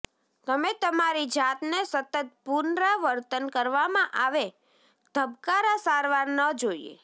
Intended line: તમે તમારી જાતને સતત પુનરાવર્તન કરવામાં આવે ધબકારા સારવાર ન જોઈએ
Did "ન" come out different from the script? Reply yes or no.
no